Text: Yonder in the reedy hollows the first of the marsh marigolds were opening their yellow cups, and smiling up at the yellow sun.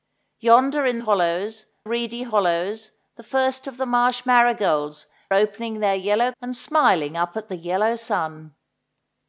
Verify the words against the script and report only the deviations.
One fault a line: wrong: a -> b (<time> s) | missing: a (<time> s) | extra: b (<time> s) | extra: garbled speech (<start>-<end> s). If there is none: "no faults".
wrong: the -> hollows (1.0 s)
missing: were (5.0 s)
missing: cups (6.3 s)